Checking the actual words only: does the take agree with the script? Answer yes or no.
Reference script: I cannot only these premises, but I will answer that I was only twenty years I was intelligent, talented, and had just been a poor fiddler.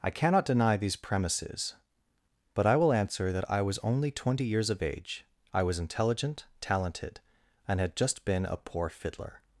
no